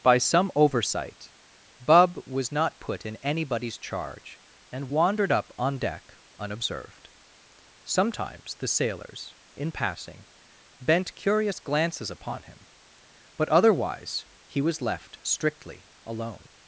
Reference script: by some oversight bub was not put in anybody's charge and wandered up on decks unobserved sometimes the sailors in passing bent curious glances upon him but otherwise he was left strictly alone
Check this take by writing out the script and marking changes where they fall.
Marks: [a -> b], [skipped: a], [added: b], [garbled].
by some oversight bub was not put in anybody's charge and wandered up on [decks -> deck] unobserved sometimes the sailors in passing bent curious glances upon him but otherwise he was left strictly alone